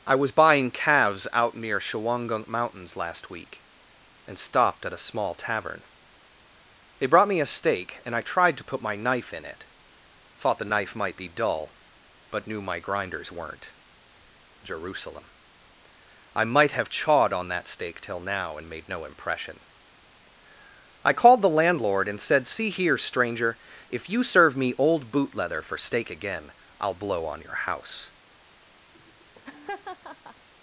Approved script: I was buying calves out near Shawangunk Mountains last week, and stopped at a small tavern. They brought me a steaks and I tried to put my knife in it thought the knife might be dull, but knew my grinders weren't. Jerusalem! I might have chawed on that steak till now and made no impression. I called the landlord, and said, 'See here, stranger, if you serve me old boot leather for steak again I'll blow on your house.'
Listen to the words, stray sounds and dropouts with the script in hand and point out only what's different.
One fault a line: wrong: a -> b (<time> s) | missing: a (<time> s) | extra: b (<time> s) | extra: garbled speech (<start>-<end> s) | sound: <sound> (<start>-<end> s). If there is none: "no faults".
wrong: steaks -> steak (7.5 s)
sound: laugh (28.9-30.5 s)